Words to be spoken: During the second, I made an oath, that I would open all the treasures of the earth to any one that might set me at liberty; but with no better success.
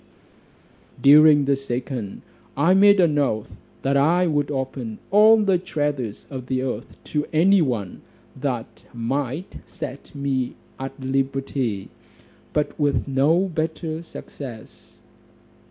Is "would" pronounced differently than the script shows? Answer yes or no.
no